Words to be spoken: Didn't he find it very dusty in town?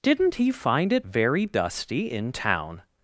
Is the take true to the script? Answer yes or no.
yes